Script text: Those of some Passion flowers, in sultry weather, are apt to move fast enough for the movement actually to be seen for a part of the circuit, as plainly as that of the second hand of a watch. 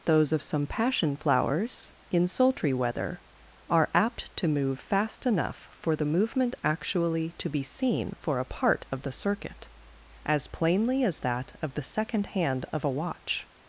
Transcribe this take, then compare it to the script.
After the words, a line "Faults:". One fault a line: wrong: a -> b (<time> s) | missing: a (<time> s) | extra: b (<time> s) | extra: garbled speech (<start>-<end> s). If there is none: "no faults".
Those of some Passion flowers, in sultry weather, are apt to move fast enough for the movement actually to be seen for a part of the circuit, as plainly as that of the second hand of a watch.
Faults:
no faults